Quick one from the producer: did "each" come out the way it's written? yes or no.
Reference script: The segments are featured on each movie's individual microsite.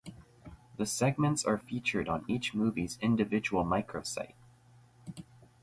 yes